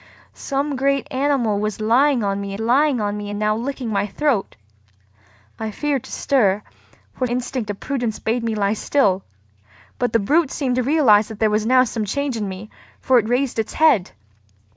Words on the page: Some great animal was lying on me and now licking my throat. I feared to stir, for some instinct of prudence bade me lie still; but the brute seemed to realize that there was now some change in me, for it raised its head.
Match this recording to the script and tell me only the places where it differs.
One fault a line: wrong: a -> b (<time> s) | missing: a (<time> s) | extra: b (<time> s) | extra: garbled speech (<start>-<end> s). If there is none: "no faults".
extra: lying on me (2.6 s)
missing: some (7.3 s)